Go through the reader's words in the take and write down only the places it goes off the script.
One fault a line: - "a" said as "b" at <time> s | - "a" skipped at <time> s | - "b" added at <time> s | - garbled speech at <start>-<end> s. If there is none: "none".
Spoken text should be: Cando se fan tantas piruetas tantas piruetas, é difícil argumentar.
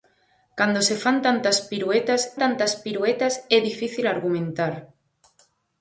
none